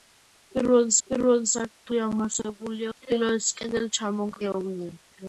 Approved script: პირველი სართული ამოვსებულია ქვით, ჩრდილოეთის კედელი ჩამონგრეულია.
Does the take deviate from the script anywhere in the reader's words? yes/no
yes